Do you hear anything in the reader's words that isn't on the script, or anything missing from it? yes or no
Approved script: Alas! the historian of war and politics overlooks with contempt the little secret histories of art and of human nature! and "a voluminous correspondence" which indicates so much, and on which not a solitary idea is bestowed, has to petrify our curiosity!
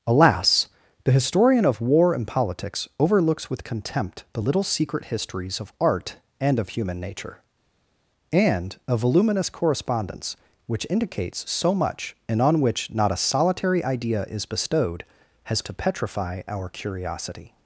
no